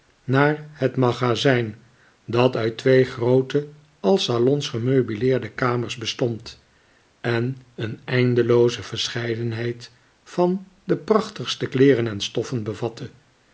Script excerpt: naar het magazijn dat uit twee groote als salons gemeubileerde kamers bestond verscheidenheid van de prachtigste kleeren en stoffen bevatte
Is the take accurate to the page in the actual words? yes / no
no